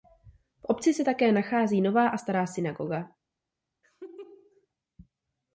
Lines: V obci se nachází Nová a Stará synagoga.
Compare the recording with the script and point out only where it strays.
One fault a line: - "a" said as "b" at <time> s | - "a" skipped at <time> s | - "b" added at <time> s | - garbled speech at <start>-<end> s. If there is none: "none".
- "také" added at 1.0 s